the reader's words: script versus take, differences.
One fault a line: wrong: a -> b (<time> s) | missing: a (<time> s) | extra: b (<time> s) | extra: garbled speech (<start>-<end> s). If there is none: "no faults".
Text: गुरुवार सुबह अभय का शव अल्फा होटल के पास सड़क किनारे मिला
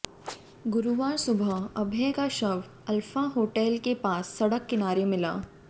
no faults